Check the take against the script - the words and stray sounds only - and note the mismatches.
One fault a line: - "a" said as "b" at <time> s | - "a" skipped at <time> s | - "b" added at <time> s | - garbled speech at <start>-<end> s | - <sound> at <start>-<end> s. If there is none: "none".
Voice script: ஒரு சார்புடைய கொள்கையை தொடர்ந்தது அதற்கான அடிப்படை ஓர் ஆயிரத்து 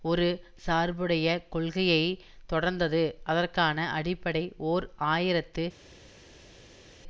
none